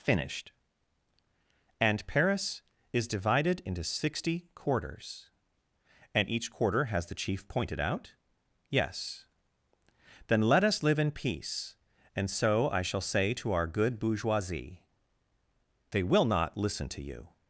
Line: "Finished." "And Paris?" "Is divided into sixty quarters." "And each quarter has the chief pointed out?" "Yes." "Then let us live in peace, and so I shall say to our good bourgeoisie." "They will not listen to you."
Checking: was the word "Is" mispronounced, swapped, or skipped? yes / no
no